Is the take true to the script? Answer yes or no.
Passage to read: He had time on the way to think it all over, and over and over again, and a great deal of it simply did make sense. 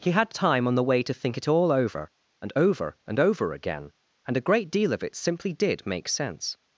yes